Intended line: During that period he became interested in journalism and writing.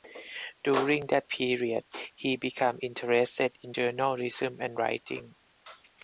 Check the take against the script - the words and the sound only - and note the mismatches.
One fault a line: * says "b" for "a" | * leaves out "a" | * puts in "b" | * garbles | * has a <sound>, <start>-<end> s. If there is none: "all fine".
all fine